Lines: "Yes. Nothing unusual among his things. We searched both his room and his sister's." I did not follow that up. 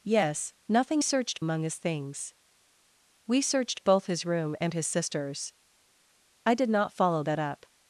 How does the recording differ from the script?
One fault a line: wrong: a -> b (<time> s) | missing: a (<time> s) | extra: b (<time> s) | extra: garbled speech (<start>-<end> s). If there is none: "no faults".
wrong: unusual -> searched (1.0 s)